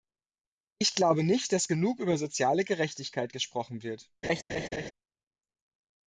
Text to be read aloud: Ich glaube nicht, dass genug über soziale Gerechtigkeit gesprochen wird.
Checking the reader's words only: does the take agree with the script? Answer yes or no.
yes